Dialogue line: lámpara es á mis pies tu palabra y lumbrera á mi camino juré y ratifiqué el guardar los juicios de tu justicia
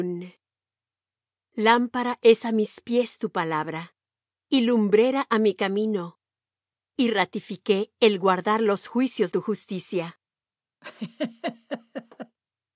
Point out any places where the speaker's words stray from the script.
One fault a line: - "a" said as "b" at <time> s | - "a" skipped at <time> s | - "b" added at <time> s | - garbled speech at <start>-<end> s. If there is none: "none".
- "juré" skipped at 6.2 s
- "de" skipped at 9.3 s